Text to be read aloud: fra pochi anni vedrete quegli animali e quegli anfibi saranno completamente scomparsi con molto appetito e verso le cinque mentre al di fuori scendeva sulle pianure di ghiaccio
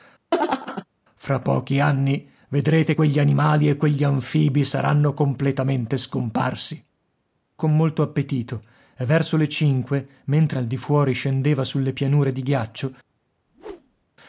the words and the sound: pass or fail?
fail